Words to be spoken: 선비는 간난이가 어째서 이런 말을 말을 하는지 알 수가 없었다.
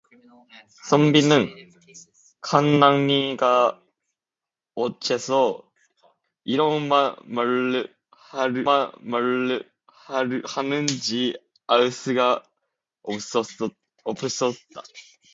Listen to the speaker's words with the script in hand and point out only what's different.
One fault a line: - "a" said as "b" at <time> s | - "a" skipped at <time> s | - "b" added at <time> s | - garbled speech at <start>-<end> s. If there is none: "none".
none